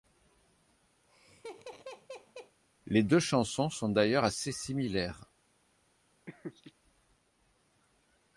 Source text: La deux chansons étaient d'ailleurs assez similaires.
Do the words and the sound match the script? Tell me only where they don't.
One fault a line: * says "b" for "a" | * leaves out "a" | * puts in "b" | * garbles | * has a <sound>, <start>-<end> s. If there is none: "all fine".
* has a laugh, 1.0-2.6 s
* says "Les" for "La"
* says "sont" for "étaient"
* has a laugh, 6.3-6.7 s